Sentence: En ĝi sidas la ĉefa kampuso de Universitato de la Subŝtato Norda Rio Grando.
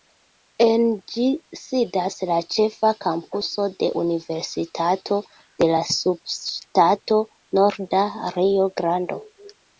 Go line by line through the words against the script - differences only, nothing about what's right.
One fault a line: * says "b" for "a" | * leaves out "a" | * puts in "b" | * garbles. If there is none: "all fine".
all fine